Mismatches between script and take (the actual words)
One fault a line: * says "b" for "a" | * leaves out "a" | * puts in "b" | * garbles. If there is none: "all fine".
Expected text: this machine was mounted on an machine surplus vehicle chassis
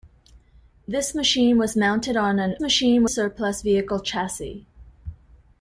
all fine